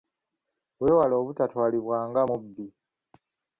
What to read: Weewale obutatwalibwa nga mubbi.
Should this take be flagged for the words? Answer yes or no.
no